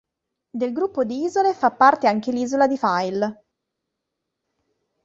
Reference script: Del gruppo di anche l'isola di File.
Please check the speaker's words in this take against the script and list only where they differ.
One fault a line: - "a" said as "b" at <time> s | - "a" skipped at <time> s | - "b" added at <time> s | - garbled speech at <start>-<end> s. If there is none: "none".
- "isole fa parte" added at 1.2 s